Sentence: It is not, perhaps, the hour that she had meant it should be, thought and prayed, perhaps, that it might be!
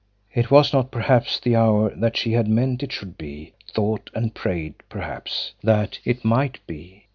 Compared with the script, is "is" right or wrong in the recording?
wrong